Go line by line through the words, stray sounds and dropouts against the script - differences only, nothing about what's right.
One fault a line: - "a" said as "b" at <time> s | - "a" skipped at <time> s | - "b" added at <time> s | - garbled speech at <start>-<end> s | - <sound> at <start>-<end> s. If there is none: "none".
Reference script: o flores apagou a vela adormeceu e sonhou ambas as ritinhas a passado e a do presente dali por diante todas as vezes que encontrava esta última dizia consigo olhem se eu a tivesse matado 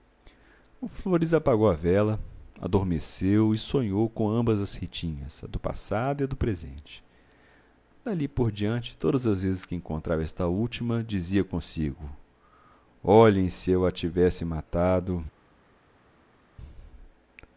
- "com" added at 4.1 s
- "do" added at 5.5 s